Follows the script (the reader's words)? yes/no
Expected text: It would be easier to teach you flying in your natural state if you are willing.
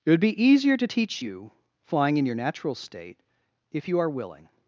yes